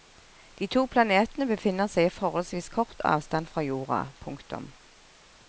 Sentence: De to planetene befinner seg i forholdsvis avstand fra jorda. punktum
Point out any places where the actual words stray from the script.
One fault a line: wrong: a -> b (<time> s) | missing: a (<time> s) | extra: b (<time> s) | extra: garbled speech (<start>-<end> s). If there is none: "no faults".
extra: kort (2.8 s)